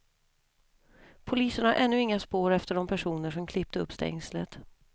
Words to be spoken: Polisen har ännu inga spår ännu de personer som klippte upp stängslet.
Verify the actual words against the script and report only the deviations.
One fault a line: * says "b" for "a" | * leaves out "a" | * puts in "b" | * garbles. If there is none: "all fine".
* says "efter" for "ännu"